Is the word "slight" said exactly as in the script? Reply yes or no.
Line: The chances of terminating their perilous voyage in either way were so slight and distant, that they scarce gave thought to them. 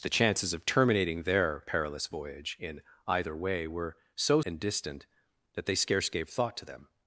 no